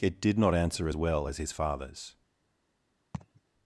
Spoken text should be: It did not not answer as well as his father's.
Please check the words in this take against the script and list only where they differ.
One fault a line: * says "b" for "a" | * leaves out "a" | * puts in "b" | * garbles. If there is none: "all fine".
* leaves out "not"